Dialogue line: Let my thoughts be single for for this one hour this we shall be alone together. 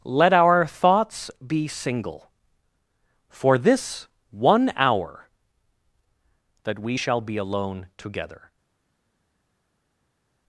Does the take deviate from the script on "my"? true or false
true